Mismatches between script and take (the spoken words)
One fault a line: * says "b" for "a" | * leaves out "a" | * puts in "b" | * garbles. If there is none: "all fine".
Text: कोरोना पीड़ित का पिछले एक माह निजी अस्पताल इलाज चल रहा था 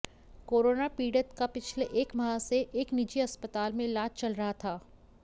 * puts in "से एक"
* puts in "में"